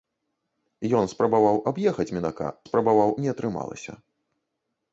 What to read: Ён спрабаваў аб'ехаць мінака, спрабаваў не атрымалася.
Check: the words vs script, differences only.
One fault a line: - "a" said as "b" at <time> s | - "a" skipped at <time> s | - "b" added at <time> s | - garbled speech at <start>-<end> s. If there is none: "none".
none